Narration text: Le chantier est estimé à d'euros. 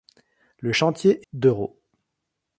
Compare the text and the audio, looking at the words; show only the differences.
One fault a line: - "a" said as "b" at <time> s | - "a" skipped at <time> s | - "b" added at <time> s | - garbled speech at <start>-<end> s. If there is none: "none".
- "est estimé à" skipped at 1.3 s